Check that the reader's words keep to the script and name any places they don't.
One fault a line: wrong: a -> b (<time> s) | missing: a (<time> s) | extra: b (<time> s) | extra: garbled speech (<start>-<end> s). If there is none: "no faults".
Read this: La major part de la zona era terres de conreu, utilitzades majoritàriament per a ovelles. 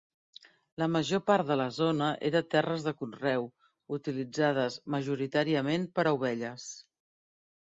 no faults